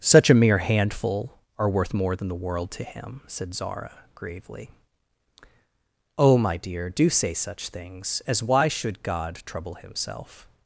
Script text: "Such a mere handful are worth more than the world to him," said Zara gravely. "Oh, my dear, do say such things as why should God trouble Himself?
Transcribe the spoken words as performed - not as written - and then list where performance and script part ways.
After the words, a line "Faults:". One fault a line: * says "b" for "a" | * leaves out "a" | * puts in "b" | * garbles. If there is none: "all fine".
"Such a mere handful are worth more than the world to him," said Zara gravely. "Oh, my dear, do say such things as why should God trouble Himself?
Faults:
all fine